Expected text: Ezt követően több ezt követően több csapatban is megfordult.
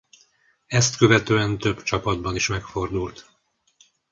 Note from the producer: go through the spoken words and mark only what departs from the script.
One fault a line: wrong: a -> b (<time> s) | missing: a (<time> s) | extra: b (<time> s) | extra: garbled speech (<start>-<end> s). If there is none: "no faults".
missing: ezt követően több (1.8 s)